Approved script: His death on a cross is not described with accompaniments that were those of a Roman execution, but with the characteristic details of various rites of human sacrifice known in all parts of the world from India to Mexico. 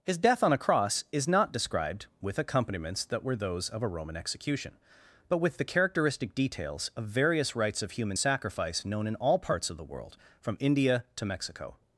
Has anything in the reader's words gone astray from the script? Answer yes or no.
no